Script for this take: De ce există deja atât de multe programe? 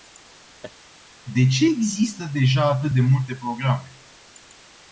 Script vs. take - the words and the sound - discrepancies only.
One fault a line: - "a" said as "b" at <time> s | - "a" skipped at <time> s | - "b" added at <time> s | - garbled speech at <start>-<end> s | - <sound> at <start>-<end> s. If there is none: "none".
- laugh at 0.6-0.8 s